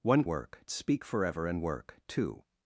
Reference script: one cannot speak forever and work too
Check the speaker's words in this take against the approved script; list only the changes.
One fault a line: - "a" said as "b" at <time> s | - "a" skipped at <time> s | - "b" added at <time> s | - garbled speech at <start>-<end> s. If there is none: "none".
- "cannot" said as "work" at 0.3 s